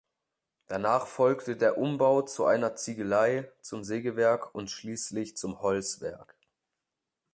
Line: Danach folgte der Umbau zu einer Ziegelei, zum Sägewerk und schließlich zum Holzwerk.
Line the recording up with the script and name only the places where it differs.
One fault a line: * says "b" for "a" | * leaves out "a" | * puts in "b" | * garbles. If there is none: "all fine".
all fine